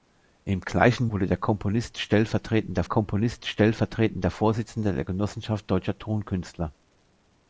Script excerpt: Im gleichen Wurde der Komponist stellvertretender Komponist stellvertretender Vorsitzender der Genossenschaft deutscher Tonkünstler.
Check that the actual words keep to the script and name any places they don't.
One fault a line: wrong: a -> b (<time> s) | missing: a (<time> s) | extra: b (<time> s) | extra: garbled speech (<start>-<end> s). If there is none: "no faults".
no faults